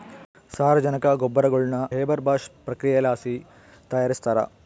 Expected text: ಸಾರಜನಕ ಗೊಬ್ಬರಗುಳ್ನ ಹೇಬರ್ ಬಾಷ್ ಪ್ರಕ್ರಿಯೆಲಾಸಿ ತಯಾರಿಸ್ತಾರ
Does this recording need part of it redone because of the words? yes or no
no